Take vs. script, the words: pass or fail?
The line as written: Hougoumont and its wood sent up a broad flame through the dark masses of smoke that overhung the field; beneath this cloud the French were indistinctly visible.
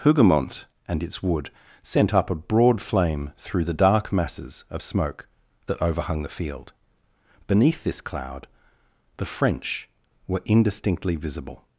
pass